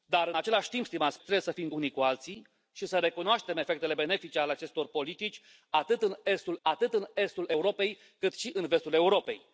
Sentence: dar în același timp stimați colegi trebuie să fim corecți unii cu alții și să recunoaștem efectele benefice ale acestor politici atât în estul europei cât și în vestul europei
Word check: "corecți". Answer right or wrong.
wrong